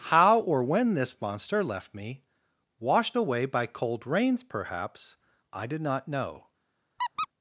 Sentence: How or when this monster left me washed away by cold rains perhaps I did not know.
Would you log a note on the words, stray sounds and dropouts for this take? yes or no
yes